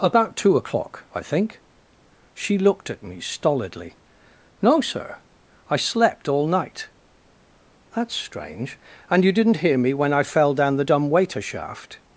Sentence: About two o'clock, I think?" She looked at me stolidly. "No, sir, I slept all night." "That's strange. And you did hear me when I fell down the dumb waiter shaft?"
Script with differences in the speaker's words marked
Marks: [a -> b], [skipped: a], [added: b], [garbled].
About two o'clock, I think?" She looked at me stolidly. "No, sir, I slept all night." "That's strange. And you [did -> didn't] hear me when I fell down the dumb waiter shaft?"